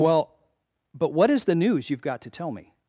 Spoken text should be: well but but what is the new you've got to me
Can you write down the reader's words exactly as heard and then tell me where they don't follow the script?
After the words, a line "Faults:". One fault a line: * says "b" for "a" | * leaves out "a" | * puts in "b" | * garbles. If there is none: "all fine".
well but what is the news you've got to tell me
Faults:
* leaves out "but"
* says "news" for "new"
* puts in "tell"